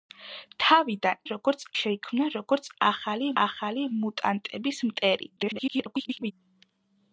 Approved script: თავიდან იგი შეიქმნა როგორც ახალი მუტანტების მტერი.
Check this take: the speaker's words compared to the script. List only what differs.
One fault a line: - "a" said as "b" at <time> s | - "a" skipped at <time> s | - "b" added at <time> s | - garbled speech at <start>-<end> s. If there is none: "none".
- "იგი" said as "როგორც" at 1.3 s
- "ახალი" added at 3.4 s
- garbled speech at 5.4-6.3 s